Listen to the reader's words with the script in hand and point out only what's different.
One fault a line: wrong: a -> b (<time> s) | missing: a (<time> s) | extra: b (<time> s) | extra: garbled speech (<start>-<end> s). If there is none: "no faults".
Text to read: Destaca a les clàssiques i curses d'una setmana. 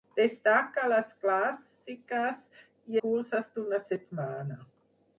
no faults